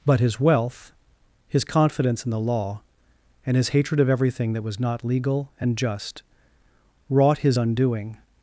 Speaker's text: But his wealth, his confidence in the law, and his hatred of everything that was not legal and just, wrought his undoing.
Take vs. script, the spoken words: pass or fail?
pass